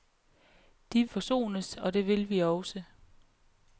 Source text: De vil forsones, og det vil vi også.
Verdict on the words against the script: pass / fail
fail